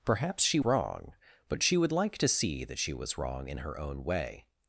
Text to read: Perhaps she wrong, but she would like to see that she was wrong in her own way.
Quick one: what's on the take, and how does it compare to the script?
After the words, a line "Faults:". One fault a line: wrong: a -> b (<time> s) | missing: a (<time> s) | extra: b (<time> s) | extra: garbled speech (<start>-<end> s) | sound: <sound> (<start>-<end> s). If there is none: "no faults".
Perhaps she wrong, but she would like to see that she was wrong in her own way.
Faults:
no faults